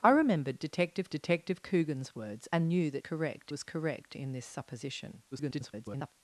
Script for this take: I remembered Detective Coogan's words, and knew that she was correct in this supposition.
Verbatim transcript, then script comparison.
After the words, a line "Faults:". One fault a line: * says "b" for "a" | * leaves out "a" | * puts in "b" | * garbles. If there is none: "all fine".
I remembered Detective Detective Coogan's words, and knew that correct was correct in this supposition. [garbled]
Faults:
* puts in "Detective"
* says "correct" for "she"
* garbles